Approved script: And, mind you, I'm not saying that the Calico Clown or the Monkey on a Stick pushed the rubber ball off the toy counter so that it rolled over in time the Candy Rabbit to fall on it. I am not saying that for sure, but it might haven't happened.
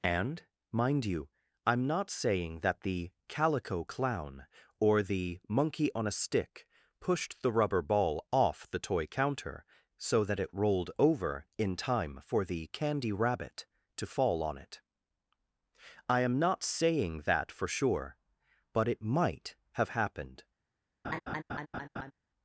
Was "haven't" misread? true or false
true